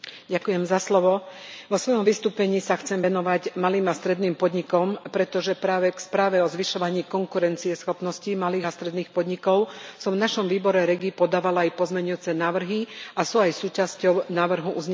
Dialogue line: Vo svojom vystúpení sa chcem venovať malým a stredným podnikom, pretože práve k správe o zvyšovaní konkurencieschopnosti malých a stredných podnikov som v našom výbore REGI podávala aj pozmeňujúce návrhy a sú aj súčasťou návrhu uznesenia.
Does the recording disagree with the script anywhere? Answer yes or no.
no